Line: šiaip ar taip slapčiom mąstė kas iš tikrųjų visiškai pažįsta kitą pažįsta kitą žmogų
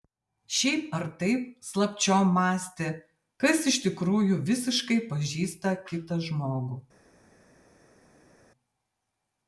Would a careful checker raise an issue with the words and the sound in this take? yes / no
yes